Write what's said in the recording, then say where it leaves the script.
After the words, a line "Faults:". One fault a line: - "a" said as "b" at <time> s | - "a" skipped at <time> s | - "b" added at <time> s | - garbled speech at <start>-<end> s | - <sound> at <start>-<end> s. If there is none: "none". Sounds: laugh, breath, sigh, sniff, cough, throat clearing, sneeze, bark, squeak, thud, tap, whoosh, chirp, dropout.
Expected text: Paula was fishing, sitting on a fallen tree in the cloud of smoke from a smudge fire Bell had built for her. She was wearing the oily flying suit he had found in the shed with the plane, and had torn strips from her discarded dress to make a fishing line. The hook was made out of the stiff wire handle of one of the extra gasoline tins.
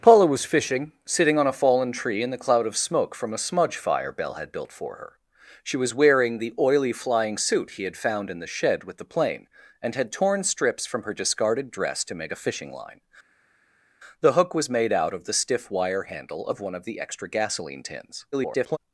Paula was fishing, sitting on a fallen tree in the cloud of smoke from a smudge fire Bell had built for her. She was wearing the oily flying suit he had found in the shed with the plane, and had torn strips from her discarded dress to make a fishing line. The hook was made out of the stiff wire handle of one of the extra gasoline tins. [garbled]
Faults:
- garbled speech at 18.3-18.8 s